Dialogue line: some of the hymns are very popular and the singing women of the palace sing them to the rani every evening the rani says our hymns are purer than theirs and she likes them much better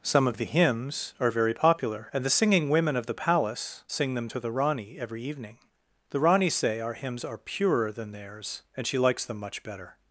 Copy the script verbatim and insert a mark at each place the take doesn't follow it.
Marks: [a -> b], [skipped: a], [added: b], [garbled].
some of the hymns are very popular and the singing women of the palace sing them to the rani every evening the rani [says -> say] our hymns are purer than theirs and she likes them much better